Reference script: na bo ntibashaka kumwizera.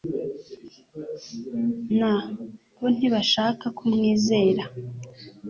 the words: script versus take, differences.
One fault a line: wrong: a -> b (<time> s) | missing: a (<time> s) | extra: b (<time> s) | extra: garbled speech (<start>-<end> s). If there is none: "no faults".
no faults